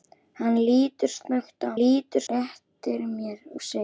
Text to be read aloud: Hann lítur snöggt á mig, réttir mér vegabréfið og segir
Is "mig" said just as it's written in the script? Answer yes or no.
no